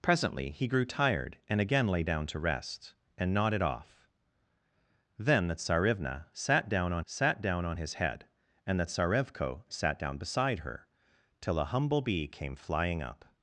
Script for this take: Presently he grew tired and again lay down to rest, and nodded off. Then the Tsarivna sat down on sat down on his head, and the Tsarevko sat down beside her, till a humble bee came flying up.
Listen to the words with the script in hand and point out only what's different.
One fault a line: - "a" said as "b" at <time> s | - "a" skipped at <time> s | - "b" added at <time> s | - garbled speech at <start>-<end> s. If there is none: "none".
none